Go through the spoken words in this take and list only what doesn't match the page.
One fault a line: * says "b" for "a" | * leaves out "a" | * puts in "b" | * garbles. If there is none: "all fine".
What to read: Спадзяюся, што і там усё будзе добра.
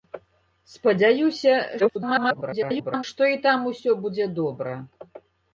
* garbles